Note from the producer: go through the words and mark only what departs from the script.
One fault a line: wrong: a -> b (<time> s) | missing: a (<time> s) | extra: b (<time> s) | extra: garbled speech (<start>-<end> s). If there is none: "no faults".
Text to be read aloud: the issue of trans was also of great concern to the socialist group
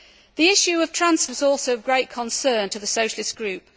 no faults